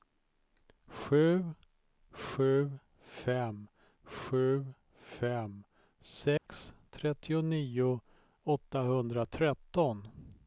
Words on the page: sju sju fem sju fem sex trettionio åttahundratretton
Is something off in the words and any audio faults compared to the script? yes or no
yes